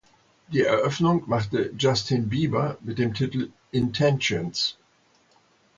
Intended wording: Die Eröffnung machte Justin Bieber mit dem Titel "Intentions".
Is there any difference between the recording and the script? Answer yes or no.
no